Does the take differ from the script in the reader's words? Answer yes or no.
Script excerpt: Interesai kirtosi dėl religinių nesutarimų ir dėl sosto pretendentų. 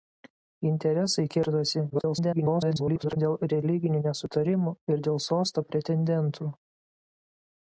yes